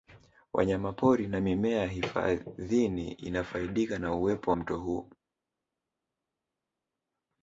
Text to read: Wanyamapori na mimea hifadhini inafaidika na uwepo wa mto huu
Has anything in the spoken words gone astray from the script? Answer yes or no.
yes